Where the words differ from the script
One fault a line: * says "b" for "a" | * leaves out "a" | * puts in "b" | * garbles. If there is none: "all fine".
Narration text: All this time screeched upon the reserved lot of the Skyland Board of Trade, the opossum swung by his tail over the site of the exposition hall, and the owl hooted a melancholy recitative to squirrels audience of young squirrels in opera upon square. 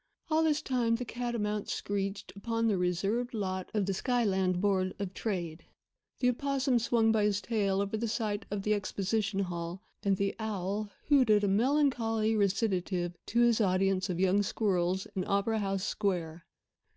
* puts in "the catamount"
* says "his" for "squirrels"
* says "house" for "upon"